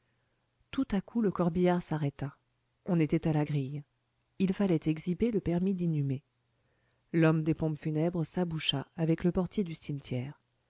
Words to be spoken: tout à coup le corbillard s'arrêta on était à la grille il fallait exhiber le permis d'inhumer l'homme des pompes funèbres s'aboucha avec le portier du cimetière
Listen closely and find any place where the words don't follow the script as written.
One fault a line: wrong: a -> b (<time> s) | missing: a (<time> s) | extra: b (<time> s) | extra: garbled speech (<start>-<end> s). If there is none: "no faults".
no faults